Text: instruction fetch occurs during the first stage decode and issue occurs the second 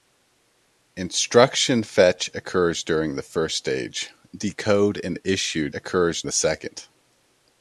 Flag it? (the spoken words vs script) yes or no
no